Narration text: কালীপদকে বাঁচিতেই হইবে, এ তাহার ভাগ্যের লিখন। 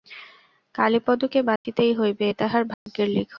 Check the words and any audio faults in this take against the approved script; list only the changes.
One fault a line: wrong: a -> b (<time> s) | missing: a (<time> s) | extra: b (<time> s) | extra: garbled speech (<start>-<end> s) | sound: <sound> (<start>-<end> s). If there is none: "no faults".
sound: dropout (1.6-1.7 s)
sound: dropout (2.7-2.9 s)